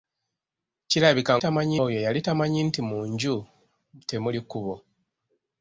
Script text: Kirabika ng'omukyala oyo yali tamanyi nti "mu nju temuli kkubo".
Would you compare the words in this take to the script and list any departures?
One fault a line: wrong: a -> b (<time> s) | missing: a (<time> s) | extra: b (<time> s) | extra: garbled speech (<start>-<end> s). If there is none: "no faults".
wrong: ng'omukyala -> tamanyi (1.4 s)